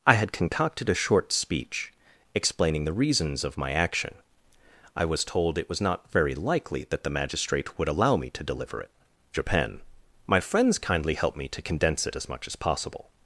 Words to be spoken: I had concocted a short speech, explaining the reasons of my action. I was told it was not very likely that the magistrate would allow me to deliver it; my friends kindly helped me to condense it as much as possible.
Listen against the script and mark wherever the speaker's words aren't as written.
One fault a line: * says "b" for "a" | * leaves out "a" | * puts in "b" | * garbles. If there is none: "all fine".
* puts in "japan"